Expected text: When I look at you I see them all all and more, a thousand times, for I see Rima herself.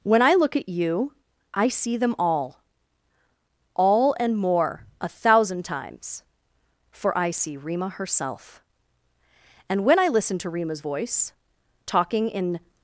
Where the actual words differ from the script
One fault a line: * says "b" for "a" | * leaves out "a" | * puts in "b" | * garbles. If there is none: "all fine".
* puts in "And when I listen to Rima's voice talking in"